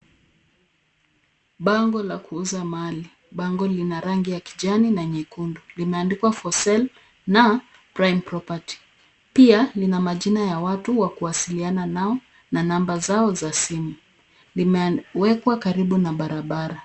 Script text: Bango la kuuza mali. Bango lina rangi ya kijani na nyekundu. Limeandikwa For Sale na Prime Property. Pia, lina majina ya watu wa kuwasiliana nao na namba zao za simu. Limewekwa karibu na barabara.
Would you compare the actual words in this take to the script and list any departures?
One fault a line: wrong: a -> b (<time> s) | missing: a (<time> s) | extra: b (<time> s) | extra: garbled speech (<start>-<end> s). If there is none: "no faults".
no faults